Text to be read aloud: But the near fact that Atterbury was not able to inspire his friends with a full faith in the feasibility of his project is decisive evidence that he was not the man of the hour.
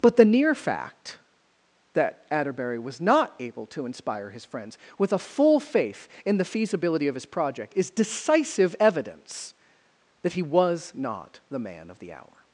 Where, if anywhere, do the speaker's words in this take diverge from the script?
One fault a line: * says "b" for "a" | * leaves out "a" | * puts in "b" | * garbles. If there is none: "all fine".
all fine